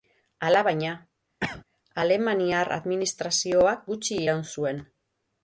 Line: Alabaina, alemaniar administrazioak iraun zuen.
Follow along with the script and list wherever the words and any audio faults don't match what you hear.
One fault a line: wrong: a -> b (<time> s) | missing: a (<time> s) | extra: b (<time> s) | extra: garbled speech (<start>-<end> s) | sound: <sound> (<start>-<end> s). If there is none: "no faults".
sound: cough (1.4-1.6 s)
extra: gutxi (3.9 s)